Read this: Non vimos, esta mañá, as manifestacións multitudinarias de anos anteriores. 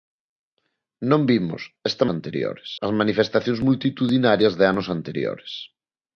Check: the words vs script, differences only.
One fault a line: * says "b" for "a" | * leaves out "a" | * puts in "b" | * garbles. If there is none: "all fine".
* says "anteriores" for "mañá"